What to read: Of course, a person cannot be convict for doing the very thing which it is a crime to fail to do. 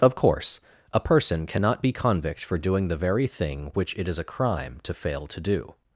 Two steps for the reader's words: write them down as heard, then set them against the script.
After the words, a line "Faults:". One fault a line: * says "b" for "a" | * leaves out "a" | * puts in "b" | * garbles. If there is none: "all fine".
Of course, a person cannot be convict for doing the very thing which it is a crime to fail to do.
Faults:
all fine